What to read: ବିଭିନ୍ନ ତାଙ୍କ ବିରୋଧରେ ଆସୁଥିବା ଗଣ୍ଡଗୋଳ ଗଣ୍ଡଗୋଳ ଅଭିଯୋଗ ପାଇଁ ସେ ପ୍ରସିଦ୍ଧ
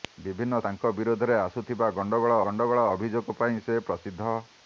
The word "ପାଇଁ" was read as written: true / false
true